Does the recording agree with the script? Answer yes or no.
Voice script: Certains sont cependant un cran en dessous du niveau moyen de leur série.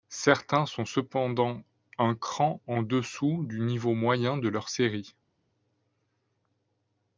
yes